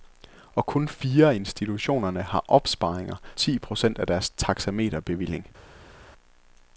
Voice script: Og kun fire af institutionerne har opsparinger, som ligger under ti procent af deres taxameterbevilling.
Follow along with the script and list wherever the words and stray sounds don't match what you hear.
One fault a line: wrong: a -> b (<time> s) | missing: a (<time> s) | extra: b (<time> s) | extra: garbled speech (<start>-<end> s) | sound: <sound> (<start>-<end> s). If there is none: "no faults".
missing: som ligger under (3.1 s)